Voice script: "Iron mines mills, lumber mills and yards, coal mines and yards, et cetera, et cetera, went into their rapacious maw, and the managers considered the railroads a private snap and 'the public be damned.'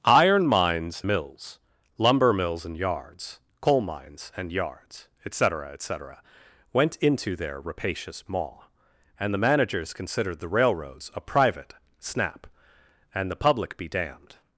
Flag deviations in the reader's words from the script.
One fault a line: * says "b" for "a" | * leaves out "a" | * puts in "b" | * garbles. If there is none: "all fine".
all fine